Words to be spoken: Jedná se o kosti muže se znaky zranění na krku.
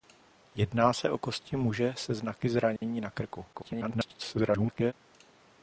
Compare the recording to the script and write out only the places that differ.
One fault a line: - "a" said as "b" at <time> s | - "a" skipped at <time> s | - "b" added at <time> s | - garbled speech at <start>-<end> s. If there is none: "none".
- garbled speech at 3.5-4.9 s